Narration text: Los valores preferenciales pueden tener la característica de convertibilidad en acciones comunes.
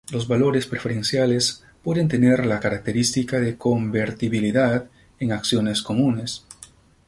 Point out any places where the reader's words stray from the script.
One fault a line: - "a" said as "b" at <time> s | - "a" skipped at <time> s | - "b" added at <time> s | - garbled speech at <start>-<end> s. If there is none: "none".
none